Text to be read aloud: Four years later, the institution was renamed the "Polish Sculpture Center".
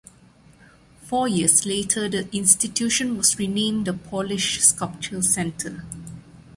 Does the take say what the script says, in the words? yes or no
yes